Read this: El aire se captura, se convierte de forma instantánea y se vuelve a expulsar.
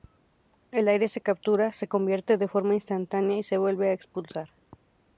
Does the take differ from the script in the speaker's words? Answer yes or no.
no